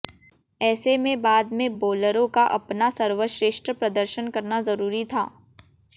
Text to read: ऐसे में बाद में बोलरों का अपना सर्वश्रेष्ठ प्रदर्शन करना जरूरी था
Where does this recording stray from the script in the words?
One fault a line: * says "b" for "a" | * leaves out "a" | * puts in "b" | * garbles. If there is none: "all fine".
all fine